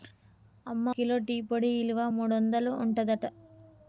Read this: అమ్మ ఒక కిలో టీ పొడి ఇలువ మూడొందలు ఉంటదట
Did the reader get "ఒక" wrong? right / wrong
wrong